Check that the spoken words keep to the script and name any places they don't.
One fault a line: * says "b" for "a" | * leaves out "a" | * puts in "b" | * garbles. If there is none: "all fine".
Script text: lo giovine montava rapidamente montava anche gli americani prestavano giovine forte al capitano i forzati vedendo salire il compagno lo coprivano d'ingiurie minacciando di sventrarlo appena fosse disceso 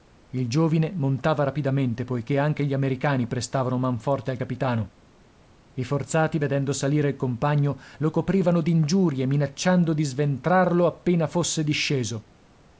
* says "il" for "lo"
* says "poiché" for "montava"
* says "man" for "giovine"